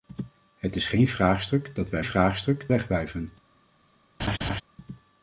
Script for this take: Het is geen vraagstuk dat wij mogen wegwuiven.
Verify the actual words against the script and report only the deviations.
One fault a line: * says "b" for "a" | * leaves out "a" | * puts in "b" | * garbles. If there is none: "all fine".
* says "vraagstuk" for "mogen"